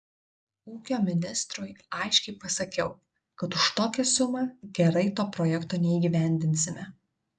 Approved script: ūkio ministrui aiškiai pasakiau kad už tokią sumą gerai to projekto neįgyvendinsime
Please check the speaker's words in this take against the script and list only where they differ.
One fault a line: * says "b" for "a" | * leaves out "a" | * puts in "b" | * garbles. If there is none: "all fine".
all fine